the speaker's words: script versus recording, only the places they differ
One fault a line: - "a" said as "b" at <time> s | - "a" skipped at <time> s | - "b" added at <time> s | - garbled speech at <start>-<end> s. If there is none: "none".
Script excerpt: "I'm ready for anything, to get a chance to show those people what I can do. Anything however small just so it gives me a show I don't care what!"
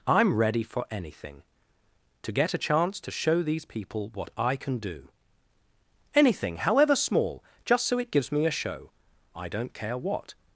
- "those" said as "these" at 3.4 s